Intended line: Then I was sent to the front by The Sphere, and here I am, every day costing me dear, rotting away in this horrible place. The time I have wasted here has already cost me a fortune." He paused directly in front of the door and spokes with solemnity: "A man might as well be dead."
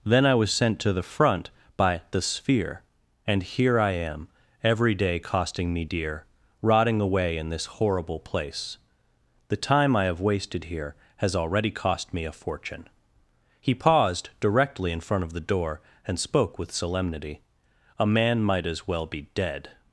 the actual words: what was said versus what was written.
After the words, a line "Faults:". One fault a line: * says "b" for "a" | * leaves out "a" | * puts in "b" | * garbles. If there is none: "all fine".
Then I was sent to the front by The Sphere, and here I am, every day costing me dear, rotting away in this horrible place. The time I have wasted here has already cost me a fortune." He paused directly in front of the door and spoke with solemnity: "A man might as well be dead."
Faults:
* says "spoke" for "spokes"